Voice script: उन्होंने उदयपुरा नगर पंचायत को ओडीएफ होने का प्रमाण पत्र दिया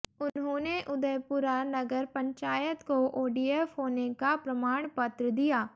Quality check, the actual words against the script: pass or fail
pass